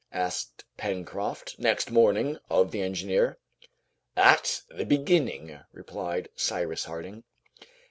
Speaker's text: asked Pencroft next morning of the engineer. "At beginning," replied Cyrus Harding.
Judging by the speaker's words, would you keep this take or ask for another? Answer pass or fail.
fail